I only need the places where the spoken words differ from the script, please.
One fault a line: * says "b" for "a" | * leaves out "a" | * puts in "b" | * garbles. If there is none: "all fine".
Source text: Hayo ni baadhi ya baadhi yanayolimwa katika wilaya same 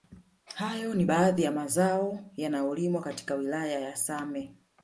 * says "mazao" for "baadhi"
* puts in "ya"